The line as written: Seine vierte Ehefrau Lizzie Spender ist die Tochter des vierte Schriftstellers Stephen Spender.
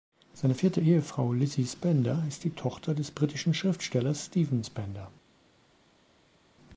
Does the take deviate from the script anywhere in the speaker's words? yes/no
yes